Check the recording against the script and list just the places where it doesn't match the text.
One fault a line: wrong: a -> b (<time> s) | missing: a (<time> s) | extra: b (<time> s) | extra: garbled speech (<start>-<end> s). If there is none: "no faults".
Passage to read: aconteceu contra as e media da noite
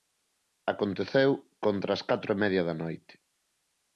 extra: catro (2.1 s)